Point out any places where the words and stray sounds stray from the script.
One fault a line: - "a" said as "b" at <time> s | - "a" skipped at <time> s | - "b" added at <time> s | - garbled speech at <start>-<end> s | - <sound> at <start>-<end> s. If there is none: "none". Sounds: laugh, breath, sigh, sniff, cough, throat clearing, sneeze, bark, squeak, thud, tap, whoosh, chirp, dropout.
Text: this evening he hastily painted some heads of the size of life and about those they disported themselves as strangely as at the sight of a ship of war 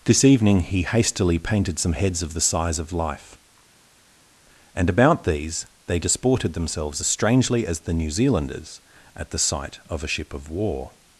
- "those" said as "these" at 5.3 s
- "the new zealanders" added at 7.8 s